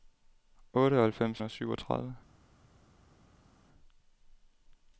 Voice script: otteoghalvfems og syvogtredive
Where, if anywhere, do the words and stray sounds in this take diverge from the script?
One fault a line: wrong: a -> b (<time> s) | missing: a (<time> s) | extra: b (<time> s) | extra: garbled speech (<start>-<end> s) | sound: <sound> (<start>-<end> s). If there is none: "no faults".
no faults